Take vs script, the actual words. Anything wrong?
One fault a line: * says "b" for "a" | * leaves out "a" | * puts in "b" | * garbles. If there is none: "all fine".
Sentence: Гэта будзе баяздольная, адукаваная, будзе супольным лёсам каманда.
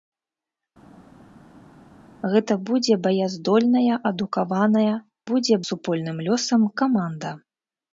all fine